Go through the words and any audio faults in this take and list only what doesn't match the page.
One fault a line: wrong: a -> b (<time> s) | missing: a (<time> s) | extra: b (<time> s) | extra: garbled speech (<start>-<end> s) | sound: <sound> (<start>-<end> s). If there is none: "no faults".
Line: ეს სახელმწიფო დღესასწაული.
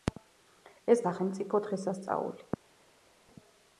no faults